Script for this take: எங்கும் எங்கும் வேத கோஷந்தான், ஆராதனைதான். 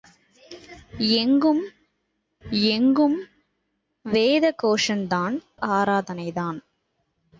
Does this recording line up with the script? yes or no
yes